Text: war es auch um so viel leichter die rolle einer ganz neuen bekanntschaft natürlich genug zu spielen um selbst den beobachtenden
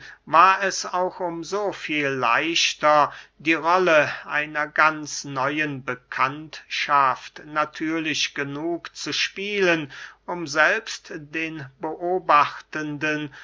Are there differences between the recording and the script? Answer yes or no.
no